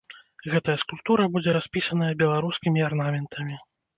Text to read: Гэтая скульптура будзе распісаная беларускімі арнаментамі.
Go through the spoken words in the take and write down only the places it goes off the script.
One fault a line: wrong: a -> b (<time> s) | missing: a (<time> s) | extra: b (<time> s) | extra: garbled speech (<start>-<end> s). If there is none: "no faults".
no faults